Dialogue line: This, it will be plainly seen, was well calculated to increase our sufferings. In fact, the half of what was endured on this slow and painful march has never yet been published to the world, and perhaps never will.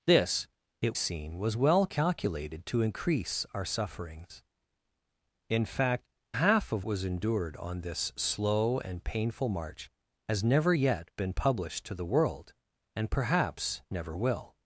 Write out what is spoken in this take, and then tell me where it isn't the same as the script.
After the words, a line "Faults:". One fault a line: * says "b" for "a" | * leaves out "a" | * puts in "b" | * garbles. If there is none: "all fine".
This, it seen, was well calculated to increase our sufferings. In fact, half of was endured on this slow and painful march has never yet been published to the world, and perhaps never will.
Faults:
* leaves out "will be plainly"
* leaves out "the"
* leaves out "what"